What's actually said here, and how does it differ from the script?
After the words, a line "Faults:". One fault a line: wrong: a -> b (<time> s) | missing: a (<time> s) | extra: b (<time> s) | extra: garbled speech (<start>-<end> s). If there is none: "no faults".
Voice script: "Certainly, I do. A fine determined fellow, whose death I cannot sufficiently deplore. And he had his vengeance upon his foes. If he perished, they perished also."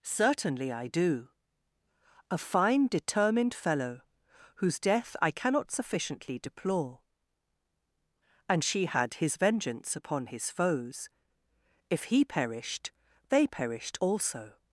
"Certainly, I do. A fine determined fellow, whose death I cannot sufficiently deplore. And she had his vengeance upon his foes. If he perished, they perished also."
Faults:
wrong: he -> she (8.6 s)